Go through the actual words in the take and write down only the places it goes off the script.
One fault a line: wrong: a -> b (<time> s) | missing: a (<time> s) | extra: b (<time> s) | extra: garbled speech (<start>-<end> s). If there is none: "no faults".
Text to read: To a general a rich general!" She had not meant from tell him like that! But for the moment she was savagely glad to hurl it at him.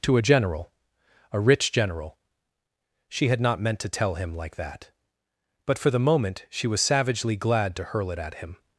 wrong: from -> to (3.8 s)